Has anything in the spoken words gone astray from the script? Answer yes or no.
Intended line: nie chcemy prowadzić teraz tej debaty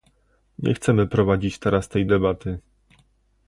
no